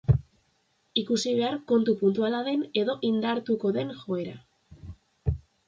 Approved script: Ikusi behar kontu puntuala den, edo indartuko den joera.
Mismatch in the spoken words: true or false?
false